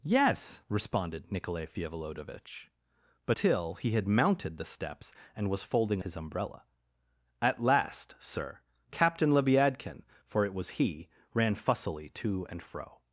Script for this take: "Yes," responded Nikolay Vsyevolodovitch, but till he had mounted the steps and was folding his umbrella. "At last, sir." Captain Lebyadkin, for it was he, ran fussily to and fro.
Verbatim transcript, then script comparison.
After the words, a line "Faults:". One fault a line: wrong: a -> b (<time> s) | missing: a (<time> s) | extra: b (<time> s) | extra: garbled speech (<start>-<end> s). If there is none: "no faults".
"Yes," responded Nikolay Vsyevolodovitch, but till he had mounted the steps and was folding his umbrella. "At last, sir." Captain Lebyadkin, for it was he, ran fussily to and fro.
Faults:
no faults